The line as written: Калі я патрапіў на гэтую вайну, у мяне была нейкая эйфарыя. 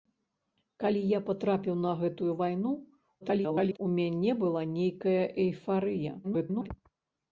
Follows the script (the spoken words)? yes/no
no